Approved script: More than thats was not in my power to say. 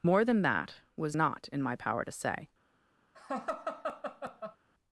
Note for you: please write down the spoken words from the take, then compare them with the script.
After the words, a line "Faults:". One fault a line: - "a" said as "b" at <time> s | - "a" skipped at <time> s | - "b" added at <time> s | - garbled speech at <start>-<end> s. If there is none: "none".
More than that was not in my power to say.
Faults:
- "thats" said as "that" at 0.4 s